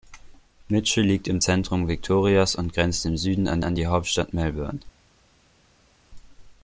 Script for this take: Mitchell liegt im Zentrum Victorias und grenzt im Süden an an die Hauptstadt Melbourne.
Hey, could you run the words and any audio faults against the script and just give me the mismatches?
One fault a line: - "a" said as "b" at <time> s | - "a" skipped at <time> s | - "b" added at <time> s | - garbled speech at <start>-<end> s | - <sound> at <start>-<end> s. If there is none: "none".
none